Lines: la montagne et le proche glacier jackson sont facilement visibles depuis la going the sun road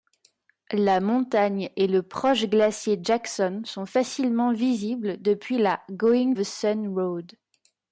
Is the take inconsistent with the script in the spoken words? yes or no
no